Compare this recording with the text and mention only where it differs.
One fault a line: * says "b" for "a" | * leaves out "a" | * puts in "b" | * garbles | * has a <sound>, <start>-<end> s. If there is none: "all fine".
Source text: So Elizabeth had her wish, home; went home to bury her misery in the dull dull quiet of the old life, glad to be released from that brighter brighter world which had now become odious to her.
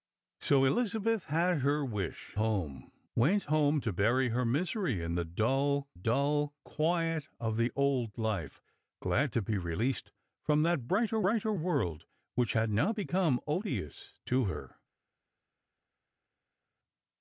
all fine